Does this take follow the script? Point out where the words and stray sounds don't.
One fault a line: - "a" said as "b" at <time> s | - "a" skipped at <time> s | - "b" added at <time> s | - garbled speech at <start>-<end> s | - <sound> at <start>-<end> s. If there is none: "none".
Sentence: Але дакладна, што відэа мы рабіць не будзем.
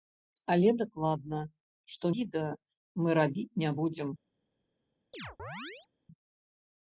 - chirp at 5.1-5.9 s